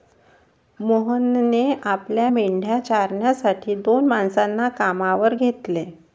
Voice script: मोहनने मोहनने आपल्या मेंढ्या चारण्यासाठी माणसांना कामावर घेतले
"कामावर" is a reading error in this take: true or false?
false